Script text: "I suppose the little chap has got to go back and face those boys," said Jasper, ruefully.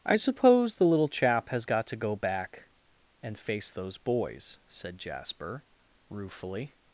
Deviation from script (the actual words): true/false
false